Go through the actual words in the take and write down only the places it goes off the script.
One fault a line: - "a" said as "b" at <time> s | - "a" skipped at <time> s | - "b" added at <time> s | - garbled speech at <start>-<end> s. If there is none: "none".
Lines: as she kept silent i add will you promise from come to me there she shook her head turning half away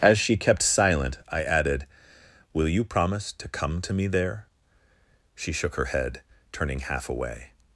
- "add" said as "added" at 1.4 s
- "from" said as "to" at 3.3 s